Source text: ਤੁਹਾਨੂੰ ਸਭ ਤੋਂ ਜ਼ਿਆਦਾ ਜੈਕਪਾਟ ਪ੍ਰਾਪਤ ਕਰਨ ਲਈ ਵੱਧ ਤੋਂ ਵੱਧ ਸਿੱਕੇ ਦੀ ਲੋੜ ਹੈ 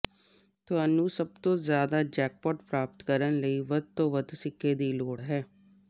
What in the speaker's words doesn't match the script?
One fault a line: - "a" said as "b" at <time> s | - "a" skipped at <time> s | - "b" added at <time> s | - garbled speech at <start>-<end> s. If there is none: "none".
none